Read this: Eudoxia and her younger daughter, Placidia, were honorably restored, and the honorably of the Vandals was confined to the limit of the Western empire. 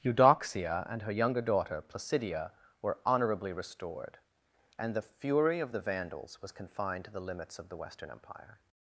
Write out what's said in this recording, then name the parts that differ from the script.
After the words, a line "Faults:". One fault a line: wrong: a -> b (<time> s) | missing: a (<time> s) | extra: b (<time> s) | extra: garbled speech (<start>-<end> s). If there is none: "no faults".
Eudoxia and her younger daughter, Placidia, were honorably restored, and the fury of the Vandals was confined to the limits of the Western empire.
Faults:
wrong: honorably -> fury (5.0 s)
wrong: limit -> limits (7.2 s)